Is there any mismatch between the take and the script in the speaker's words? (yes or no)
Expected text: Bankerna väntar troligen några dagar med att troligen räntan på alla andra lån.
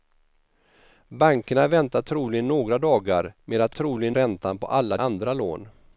no